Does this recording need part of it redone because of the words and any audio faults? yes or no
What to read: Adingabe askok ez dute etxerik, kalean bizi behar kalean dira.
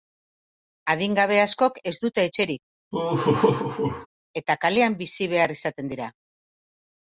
yes